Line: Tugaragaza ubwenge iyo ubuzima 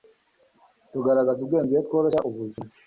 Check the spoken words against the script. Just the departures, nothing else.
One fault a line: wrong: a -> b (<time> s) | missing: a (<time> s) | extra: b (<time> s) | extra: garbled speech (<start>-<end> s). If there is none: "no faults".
extra: tworoshya (1.8 s)